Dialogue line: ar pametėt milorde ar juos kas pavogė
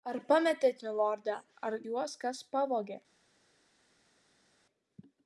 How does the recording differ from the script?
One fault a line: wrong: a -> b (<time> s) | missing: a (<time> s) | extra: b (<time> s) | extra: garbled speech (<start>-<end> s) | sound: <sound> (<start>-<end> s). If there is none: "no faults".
no faults